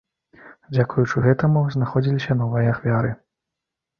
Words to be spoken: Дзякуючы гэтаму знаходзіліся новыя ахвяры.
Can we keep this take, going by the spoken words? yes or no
yes